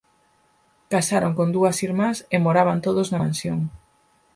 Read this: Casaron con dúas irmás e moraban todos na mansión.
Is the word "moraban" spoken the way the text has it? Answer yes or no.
yes